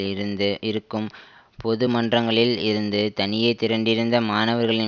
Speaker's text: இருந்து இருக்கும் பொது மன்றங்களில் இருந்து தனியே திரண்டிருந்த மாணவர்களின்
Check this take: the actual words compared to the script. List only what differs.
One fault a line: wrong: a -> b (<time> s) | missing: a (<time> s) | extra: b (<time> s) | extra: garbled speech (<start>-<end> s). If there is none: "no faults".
no faults